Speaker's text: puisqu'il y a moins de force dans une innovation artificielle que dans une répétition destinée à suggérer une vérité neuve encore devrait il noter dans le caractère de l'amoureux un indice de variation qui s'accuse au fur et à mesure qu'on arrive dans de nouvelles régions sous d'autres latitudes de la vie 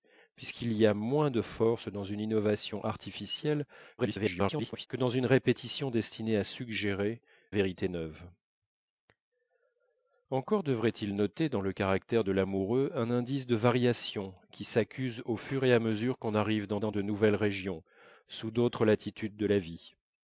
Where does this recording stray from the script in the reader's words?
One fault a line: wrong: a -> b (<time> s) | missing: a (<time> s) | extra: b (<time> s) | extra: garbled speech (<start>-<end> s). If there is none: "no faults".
extra: garbled speech (4.0-4.9 s)
missing: une (7.2 s)
extra: dans (16.8 s)